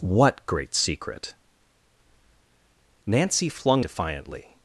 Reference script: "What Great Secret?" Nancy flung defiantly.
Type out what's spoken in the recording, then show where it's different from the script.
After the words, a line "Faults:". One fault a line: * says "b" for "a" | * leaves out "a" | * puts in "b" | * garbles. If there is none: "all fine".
"What Great Secret?" Nancy flung defiantly.
Faults:
all fine